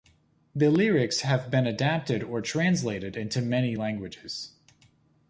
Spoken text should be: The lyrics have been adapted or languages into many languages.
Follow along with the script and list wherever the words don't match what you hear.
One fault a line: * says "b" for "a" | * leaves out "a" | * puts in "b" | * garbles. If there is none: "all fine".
* says "translated" for "languages"